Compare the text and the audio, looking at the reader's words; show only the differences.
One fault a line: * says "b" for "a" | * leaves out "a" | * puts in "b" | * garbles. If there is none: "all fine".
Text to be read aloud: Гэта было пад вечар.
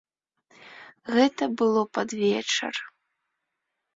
all fine